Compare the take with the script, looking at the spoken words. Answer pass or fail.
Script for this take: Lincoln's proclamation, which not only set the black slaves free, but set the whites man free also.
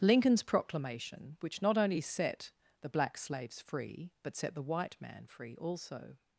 fail